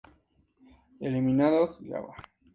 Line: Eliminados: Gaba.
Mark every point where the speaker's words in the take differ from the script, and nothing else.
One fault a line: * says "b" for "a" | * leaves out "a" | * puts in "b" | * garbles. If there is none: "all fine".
all fine